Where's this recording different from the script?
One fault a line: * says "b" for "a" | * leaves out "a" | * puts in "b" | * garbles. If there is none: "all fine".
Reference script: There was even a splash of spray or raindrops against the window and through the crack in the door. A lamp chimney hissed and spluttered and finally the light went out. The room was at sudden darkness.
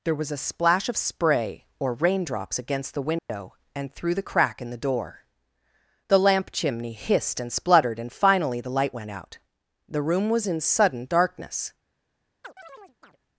* leaves out "even"
* says "The" for "A"
* says "in" for "at"